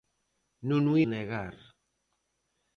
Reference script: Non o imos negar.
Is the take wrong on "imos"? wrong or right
wrong